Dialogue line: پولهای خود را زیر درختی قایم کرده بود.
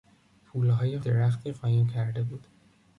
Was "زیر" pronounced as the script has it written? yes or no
no